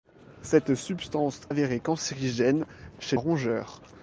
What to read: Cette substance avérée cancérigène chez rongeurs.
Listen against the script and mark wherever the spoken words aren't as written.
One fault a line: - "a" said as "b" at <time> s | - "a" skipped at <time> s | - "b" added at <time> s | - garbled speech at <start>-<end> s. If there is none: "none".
none